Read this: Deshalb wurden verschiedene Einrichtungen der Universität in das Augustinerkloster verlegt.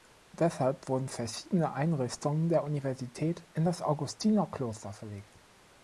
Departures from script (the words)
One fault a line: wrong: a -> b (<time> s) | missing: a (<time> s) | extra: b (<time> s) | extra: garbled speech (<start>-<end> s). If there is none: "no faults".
no faults